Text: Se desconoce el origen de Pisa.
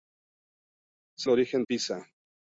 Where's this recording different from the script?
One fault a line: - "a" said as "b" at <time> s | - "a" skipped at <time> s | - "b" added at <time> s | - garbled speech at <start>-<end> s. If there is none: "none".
- "desconoce" skipped at 1.3 s
- "de" skipped at 1.6 s